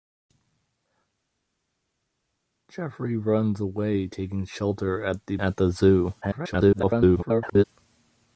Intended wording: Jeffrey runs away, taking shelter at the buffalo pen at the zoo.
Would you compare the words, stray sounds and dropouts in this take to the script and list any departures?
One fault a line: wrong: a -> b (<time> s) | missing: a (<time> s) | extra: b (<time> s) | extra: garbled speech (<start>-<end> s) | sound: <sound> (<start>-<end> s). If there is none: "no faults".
missing: buffalo pen (5.4 s)
extra: garbled speech (6.2-7.6 s)